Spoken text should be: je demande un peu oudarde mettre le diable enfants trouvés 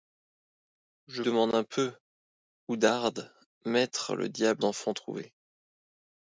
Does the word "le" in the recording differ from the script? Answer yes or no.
no